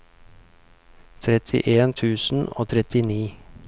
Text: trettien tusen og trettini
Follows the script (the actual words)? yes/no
yes